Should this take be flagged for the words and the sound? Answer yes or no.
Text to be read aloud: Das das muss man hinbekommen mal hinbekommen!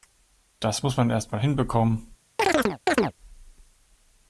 yes